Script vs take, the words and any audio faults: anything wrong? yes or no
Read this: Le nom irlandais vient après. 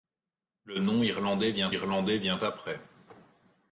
yes